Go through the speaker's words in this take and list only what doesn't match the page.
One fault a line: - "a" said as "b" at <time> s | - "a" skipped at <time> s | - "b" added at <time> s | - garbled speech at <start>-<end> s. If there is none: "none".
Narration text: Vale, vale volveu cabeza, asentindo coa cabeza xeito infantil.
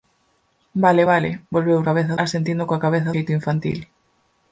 none